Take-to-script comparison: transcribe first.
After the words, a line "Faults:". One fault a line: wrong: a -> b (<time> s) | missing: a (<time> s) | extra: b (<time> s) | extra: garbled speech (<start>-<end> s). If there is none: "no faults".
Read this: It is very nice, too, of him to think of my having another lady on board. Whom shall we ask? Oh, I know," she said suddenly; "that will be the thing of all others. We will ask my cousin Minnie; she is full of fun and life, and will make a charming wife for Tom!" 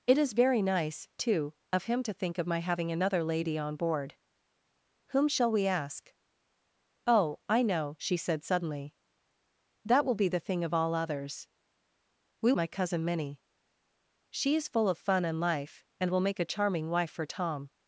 It is very nice, too, of him to think of my having another lady on board. Whom shall we ask? Oh, I know," she said suddenly; "that will be the thing of all others. We my cousin Minnie; she is full of fun and life, and will make a charming wife for Tom!"
Faults:
missing: will ask (12.5 s)